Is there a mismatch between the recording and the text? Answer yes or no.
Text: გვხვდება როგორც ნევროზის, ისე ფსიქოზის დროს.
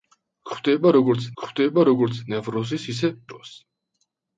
yes